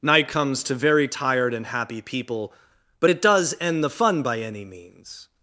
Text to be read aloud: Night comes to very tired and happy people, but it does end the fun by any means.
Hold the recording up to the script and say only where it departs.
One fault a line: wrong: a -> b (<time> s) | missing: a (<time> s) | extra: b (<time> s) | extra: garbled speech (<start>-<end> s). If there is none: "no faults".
no faults